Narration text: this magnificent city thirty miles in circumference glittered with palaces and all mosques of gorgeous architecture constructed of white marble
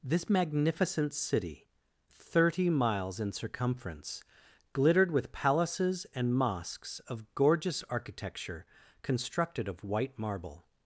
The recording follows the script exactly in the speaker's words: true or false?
false